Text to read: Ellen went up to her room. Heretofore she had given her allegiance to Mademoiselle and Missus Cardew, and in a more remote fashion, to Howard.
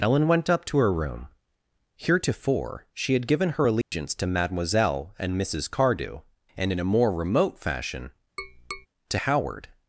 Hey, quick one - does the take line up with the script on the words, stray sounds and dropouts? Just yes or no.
no